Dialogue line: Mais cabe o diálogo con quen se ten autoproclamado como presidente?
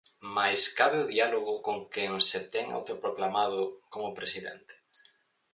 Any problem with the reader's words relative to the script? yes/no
no